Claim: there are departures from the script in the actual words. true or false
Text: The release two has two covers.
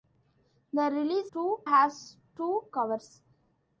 false